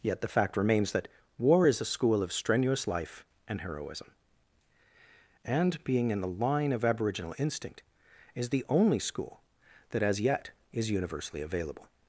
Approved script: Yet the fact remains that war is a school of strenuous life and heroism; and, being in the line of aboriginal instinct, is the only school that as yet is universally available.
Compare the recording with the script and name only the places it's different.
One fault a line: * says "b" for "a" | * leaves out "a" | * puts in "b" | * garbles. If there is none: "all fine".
all fine